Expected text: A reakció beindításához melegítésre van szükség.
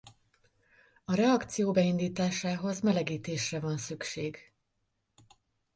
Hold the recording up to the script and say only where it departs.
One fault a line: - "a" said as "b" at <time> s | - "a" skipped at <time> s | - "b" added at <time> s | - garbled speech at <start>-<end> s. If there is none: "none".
none